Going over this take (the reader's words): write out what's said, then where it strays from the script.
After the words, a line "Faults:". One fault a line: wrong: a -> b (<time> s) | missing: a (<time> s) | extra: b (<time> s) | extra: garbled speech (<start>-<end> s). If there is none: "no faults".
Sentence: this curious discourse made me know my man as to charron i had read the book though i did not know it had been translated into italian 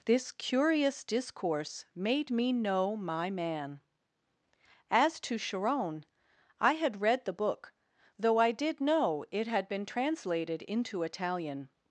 this curious discourse made me know my man as to charron i had read the book though i did know it had been translated into italian
Faults:
missing: not (8.8 s)